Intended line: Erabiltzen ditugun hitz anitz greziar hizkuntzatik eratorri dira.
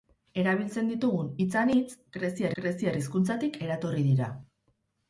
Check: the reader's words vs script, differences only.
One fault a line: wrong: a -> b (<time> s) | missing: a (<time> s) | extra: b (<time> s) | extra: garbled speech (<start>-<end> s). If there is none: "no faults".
extra: greziar (2.6 s)